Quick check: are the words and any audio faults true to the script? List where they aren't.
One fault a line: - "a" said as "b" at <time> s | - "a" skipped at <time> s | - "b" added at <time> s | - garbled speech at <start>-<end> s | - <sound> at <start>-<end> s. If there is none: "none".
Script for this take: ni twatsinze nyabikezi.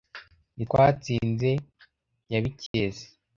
- dropout at 2.7-2.7 s